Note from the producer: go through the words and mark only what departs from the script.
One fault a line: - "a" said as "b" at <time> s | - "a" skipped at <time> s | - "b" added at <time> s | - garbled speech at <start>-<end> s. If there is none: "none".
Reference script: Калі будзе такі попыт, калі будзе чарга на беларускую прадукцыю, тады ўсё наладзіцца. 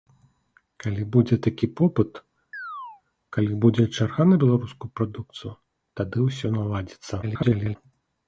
- garbled speech at 7.2-7.8 s